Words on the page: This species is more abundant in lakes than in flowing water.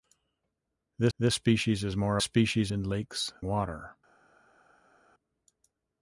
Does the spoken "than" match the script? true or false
false